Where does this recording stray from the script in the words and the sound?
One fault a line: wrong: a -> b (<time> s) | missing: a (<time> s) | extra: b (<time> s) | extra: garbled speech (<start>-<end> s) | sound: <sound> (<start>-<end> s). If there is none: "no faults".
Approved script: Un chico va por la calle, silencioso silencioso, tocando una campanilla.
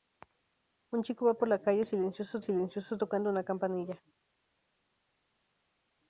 no faults